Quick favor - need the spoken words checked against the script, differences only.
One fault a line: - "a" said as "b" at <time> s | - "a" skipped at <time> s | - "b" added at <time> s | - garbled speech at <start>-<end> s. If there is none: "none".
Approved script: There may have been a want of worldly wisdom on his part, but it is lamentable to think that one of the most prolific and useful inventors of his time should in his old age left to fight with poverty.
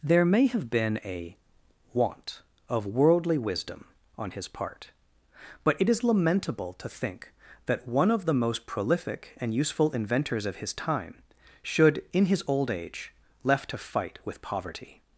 none